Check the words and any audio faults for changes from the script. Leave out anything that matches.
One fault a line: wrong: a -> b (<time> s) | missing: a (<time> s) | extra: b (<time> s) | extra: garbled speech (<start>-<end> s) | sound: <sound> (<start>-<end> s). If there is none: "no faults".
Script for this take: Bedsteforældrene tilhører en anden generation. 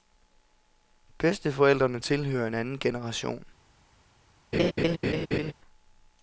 sound: laugh (4.5-5.5 s)